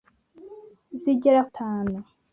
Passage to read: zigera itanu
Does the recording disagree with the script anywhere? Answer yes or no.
no